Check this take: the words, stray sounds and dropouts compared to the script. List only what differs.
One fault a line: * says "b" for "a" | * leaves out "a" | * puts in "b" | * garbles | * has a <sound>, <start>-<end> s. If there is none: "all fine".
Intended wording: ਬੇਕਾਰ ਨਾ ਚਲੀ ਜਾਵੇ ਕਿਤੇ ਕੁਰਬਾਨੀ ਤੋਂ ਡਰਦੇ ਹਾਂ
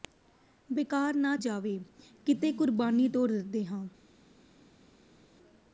* leaves out "ਚਲੀ"